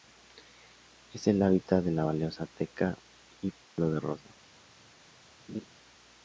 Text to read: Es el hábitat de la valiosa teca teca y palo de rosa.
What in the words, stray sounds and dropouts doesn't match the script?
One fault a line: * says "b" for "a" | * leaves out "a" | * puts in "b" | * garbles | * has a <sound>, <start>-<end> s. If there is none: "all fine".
* leaves out "teca"
* has a dropout, 3.6-3.8 s
* has a laugh, 5.5-5.7 s